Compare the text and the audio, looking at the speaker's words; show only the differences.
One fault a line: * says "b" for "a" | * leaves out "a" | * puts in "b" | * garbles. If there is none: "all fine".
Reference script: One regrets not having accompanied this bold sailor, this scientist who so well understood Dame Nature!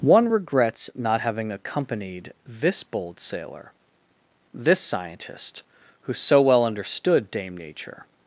all fine